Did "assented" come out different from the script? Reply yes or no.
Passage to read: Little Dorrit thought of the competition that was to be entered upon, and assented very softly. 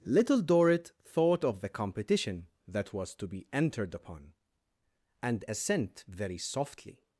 yes